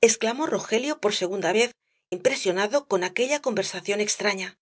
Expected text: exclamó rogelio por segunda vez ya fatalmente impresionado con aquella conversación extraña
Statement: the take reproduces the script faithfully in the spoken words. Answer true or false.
false